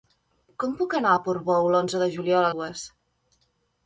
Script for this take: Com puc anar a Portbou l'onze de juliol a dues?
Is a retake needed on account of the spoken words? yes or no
no